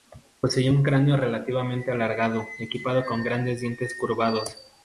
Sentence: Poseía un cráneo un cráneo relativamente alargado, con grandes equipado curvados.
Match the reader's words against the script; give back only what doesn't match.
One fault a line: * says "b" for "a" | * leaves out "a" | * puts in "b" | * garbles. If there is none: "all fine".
* leaves out "un cráneo"
* puts in "equipado"
* says "dientes" for "equipado"